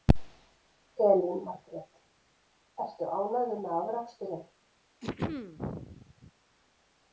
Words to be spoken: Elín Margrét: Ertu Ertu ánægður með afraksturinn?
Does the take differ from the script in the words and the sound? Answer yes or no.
yes